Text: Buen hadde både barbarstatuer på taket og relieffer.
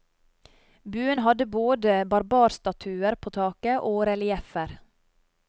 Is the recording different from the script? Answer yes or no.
no